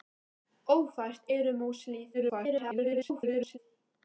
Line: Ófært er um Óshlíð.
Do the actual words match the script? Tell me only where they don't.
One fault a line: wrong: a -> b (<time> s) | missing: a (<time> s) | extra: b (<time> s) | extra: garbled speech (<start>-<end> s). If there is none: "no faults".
extra: garbled speech (2.1-3.6 s)